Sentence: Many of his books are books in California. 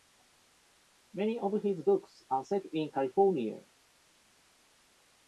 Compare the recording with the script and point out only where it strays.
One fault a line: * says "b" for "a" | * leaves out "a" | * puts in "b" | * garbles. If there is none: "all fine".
* says "set" for "books"